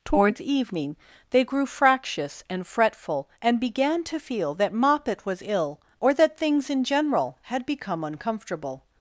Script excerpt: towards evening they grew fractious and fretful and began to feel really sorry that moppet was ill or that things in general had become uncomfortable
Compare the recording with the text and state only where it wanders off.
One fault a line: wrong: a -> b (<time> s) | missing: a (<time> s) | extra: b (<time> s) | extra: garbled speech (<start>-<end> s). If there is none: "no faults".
missing: really sorry (4.5 s)